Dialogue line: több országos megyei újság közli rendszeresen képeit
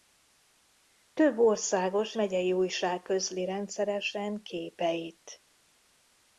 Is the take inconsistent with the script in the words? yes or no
no